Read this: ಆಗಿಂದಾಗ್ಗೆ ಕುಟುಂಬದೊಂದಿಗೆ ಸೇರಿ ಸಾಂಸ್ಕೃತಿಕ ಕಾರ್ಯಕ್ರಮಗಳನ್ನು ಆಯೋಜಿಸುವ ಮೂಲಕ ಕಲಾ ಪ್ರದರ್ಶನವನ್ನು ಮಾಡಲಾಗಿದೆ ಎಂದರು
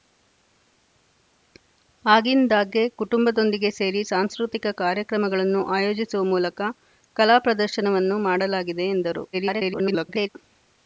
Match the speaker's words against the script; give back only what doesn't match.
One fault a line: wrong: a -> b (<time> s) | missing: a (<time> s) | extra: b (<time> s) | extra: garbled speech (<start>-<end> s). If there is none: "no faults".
extra: garbled speech (9.3-10.3 s)